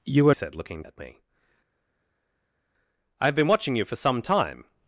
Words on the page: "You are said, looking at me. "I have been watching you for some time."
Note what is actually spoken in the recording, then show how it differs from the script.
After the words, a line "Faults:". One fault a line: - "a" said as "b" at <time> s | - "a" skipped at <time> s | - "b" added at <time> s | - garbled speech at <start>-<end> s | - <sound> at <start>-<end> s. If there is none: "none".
"You are said, looking at me. "I have been watching you for some time."
Faults:
none